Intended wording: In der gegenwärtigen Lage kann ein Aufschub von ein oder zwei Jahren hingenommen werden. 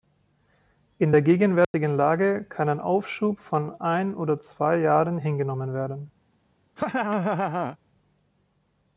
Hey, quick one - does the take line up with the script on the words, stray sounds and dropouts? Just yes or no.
no